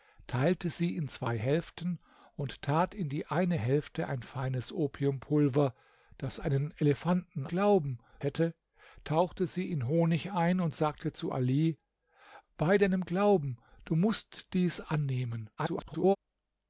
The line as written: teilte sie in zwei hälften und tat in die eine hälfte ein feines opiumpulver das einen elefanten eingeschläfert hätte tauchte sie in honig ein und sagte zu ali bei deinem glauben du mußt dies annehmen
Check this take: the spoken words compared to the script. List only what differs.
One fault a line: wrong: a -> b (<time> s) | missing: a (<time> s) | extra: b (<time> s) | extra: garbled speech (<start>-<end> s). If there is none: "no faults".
wrong: eingeschläfert -> glauben (7.4 s)
extra: garbled speech (15.6-16.2 s)